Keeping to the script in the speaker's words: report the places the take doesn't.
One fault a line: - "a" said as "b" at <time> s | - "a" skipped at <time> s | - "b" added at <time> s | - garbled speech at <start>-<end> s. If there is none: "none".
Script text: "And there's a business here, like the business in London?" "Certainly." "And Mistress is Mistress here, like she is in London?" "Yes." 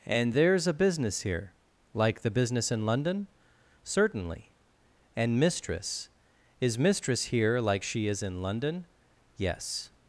none